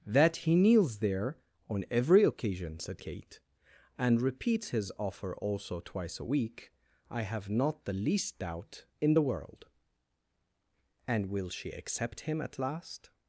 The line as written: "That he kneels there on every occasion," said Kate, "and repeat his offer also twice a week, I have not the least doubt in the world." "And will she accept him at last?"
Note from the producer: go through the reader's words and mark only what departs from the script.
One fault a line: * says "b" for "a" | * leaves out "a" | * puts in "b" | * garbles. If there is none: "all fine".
* says "repeats" for "repeat"